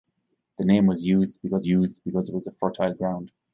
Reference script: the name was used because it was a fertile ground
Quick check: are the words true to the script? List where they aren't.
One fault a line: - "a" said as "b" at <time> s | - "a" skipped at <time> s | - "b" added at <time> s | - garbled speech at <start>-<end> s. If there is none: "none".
- "used because" added at 1.7 s